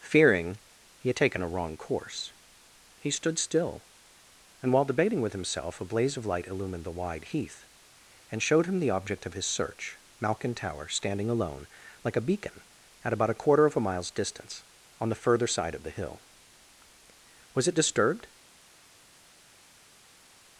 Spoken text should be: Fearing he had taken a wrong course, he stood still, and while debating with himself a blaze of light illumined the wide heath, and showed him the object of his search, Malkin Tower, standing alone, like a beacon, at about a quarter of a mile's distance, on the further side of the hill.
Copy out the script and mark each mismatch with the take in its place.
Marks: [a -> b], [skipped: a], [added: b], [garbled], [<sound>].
Fearing he had taken a wrong course, he stood still, and while debating with himself a blaze of light illumined the wide heath, and showed him the object of his search, Malkin Tower, standing alone, like a beacon, at about a quarter of a mile's distance, on the further side of the hill. [added: Was it disturbed]